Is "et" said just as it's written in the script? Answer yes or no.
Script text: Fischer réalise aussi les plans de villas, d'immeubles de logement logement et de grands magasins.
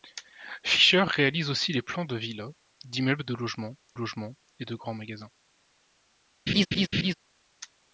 yes